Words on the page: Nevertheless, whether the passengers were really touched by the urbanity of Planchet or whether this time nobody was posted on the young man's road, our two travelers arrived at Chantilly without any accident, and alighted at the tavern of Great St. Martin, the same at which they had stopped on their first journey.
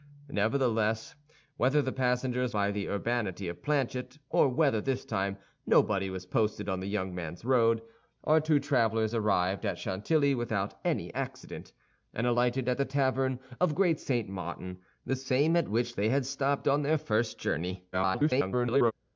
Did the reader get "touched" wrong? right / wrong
wrong